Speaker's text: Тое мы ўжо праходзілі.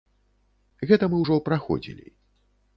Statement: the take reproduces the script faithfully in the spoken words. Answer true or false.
false